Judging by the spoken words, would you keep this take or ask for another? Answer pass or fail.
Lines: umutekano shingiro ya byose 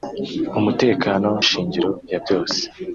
pass